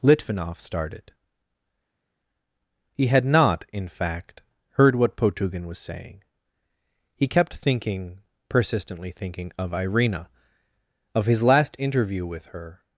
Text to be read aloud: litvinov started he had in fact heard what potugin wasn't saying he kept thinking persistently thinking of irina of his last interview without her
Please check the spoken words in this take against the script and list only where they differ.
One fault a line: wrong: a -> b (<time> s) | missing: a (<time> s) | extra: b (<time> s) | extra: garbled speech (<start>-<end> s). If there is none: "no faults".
extra: not (3.2 s)
wrong: wasn't -> was (5.7 s)
wrong: without -> with (12.2 s)